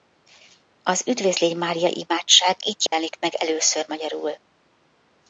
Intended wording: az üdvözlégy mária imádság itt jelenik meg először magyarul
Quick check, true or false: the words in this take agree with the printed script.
true